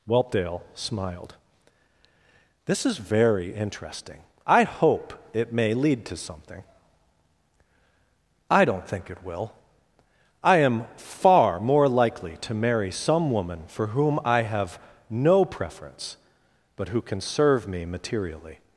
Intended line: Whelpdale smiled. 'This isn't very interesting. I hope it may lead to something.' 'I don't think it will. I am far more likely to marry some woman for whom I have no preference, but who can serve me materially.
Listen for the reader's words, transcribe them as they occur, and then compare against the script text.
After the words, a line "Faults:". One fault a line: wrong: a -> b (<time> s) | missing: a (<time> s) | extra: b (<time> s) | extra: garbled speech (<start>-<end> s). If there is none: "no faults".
Whelpdale smiled. 'This is very interesting. I hope it may lead to something.' 'I don't think it will. I am far more likely to marry some woman for whom I have no preference, but who can serve me materially.
Faults:
wrong: isn't -> is (2.9 s)